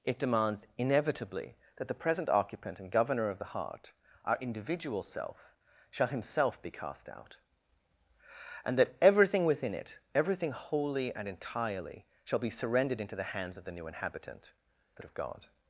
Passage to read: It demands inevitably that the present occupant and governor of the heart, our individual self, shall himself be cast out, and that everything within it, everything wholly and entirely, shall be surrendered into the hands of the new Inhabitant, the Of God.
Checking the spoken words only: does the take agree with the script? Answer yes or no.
yes